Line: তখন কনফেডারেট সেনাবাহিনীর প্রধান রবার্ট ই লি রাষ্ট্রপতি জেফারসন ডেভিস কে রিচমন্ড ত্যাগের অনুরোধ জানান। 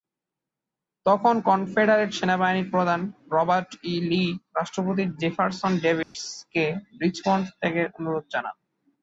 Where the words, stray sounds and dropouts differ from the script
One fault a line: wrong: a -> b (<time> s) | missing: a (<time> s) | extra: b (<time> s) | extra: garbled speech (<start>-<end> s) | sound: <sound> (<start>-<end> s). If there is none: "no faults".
sound: dropout (6.0-6.1 s)